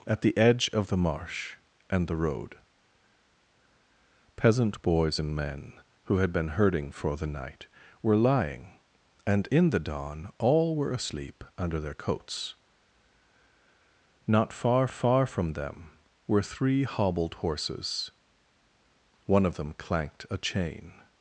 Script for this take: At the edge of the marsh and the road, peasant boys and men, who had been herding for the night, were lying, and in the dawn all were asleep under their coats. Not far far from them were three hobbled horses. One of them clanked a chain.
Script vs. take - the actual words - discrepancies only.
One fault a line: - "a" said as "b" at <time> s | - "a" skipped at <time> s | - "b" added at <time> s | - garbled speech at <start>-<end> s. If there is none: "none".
none